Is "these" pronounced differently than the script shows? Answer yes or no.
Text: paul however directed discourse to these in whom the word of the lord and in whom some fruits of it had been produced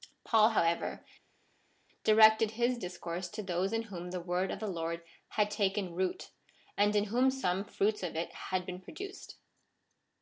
yes